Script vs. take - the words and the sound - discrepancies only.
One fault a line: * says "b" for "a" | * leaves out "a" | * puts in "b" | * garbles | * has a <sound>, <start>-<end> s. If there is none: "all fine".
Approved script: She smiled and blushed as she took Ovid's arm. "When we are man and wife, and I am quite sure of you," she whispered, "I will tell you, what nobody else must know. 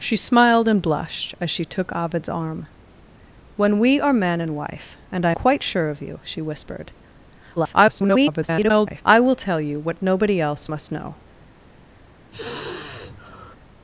* leaves out "am"
* garbles
* has a sigh, 12.3-13.6 s